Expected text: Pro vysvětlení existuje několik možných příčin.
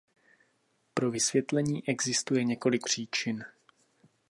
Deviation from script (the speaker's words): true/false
true